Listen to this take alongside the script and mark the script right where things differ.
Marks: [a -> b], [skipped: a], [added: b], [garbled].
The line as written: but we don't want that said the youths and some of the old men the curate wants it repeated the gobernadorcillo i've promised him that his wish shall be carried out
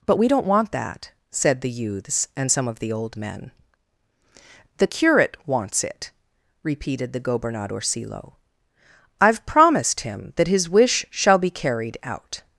but we don't want that said the youths and some of the old men the curate wants it repeated the gobernadorcillo i've promised him that his wish shall be carried out